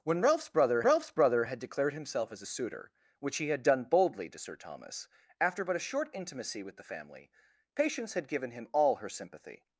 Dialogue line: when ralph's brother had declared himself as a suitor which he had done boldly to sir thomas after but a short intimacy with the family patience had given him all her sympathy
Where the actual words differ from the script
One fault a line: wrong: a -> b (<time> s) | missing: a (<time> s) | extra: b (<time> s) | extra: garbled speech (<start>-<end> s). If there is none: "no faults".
extra: ralph's brother (0.8 s)